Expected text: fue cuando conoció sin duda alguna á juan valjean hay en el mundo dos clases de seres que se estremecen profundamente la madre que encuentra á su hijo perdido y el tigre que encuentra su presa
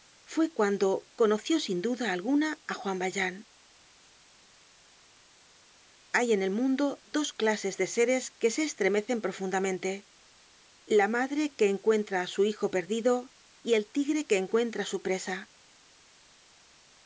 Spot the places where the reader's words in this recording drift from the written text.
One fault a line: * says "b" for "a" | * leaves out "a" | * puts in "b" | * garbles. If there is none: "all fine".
all fine